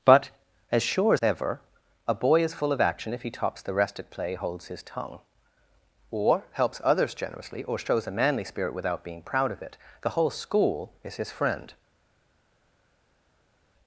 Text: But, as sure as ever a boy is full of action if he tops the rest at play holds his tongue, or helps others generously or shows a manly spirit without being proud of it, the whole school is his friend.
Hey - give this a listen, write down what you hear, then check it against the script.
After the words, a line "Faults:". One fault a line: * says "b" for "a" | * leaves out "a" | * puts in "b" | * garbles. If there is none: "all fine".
But, as sure as ever a boy is full of action if he tops the rest at play holds his tongue, or helps others generously or shows a manly spirit without being proud of it, the whole school is his friend.
Faults:
all fine